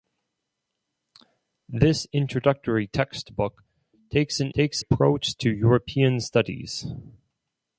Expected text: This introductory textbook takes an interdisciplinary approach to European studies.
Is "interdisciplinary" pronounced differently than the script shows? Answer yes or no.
yes